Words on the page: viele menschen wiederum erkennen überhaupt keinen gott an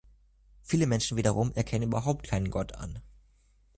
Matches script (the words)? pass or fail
pass